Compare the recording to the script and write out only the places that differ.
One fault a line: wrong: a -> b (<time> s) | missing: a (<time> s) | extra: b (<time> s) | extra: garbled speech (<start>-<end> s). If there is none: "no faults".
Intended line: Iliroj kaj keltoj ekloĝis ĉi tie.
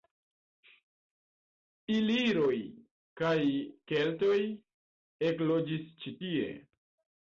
no faults